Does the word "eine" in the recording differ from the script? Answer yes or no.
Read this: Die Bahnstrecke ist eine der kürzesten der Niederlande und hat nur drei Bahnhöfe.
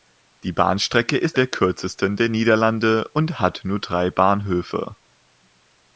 yes